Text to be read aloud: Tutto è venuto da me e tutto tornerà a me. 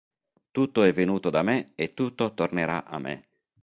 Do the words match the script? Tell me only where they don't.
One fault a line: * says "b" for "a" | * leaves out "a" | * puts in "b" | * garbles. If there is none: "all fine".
all fine